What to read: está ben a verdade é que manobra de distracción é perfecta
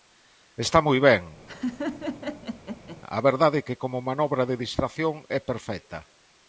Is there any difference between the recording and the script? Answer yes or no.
yes